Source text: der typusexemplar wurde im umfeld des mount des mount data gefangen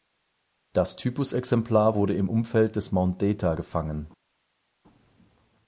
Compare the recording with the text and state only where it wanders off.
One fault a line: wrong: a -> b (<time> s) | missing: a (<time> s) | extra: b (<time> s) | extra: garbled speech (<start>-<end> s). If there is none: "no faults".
wrong: der -> das (0.7 s)
missing: des mount (3.2 s)